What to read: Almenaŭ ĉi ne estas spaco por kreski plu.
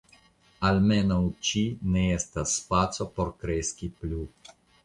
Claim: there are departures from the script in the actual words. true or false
false